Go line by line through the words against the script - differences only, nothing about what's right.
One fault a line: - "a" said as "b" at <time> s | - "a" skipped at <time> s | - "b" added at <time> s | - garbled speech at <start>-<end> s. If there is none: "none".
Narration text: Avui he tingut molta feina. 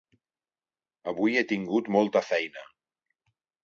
none